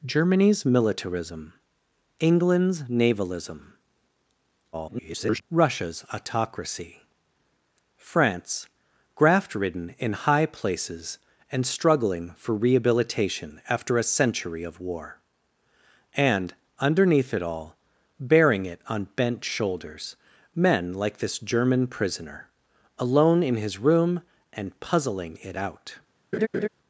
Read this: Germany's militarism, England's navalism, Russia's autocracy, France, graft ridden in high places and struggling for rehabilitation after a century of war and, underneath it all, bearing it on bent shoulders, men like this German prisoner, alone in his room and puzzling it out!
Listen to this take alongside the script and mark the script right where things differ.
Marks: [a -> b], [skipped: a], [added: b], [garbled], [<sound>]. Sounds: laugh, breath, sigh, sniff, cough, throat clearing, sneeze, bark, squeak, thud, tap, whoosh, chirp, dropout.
Germany's militarism, England's navalism, [garbled] Russia's autocracy, France, graft ridden in high places and struggling for rehabilitation after a century of war and, underneath it all, bearing it on bent shoulders, men like this German prisoner, alone in his room and puzzling it out! [laugh]